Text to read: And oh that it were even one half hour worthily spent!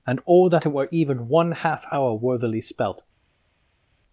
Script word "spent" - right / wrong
wrong